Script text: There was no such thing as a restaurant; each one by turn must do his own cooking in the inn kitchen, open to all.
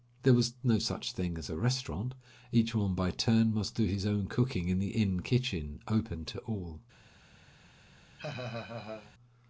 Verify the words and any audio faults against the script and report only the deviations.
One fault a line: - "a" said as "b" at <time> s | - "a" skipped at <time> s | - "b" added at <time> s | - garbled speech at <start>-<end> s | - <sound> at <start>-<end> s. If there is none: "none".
- laugh at 8.2-9.1 s